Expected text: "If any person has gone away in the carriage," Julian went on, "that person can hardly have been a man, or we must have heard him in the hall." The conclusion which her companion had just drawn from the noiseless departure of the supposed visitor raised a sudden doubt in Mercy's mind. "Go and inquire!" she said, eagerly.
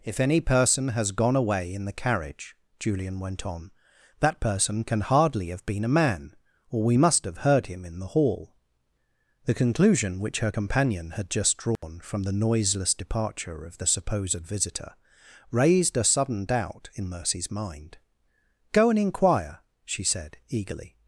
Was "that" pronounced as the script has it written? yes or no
yes